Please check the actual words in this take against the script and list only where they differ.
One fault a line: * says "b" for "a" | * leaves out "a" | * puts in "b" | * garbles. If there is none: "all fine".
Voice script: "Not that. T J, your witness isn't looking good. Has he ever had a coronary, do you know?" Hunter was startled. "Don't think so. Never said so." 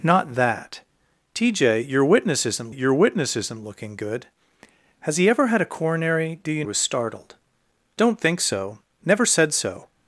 * puts in "your witness isn't"
* leaves out "know Hunter"